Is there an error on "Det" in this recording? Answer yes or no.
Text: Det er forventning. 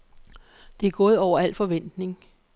no